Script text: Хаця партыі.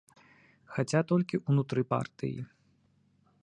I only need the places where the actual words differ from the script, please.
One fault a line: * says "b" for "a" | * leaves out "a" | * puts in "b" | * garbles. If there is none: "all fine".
* puts in "толькі ўнутры"